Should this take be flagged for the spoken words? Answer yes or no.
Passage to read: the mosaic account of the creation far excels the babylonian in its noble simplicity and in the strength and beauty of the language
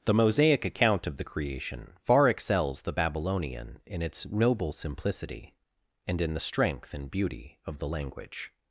no